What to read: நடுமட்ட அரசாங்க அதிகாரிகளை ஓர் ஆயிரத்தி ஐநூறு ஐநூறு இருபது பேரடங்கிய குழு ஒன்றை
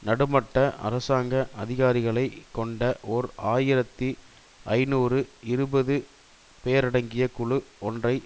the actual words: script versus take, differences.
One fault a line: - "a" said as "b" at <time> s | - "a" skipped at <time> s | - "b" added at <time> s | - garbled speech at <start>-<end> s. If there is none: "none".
- "கொண்ட" added at 2.5 s
- "ஐநூறு" skipped at 5.2 s